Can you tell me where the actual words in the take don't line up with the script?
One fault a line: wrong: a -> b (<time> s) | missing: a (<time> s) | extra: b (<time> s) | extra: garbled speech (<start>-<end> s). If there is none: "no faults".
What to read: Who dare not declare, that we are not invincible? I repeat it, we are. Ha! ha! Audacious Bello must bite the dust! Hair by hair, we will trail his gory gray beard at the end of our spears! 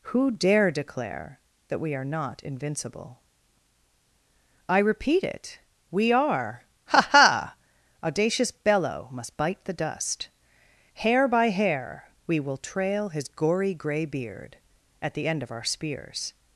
missing: not (0.7 s)